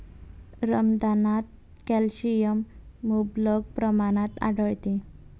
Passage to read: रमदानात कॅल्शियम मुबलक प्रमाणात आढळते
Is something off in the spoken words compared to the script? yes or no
no